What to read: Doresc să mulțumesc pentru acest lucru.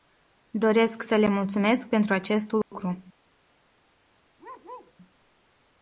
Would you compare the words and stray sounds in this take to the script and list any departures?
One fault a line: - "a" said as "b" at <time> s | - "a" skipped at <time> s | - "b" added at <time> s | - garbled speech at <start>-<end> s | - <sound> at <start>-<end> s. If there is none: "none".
- "le" added at 1.2 s
- dropout at 2.6-2.7 s
- bark at 4.4-4.9 s